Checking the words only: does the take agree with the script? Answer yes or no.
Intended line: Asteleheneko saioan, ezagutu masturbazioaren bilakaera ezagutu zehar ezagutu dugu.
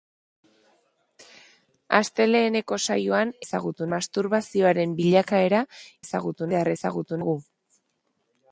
yes